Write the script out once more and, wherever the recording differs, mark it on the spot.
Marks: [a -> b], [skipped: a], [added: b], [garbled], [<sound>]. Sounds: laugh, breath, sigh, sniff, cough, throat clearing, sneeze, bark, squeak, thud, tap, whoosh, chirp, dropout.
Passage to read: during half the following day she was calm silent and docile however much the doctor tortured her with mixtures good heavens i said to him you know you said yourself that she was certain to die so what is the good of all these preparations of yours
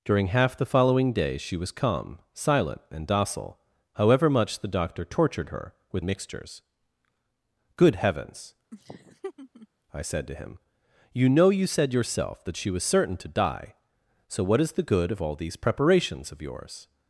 during half the following day she was calm silent and docile however much the doctor tortured her with mixtures good heavens [laugh] i said to him you know you said yourself that she was certain to die so what is the good of all these preparations of yours